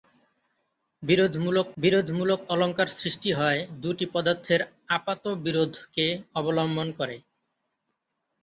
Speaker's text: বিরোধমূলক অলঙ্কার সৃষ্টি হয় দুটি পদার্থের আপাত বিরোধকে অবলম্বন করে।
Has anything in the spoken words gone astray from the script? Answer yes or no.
yes